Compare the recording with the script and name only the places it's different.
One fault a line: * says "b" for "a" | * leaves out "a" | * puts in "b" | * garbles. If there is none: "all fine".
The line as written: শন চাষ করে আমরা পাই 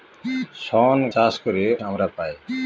all fine